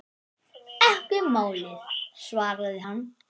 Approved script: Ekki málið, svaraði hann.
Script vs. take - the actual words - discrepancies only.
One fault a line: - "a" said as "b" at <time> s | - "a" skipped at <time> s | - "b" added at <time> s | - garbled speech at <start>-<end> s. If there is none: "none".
none